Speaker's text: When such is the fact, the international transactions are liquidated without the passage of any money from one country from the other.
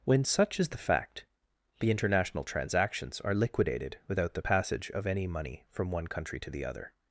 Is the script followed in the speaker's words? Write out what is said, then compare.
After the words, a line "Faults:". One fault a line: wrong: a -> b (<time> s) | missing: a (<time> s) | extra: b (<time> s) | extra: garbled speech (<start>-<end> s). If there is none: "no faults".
When such is the fact, the international transactions are liquidated without the passage of any money from one country to the other.
Faults:
wrong: from -> to (6.4 s)